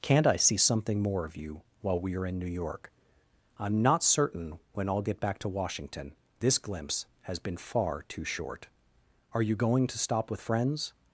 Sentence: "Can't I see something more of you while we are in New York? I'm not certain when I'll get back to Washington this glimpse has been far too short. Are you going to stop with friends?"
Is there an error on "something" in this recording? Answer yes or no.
no